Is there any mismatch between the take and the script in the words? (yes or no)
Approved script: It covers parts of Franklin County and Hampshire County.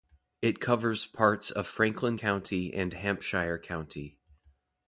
no